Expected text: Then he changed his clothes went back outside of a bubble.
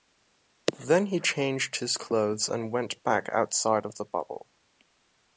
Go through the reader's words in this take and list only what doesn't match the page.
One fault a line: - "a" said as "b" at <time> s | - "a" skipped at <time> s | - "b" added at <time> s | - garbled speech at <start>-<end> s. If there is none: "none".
- "and" added at 2.5 s
- "a" said as "the" at 4.0 s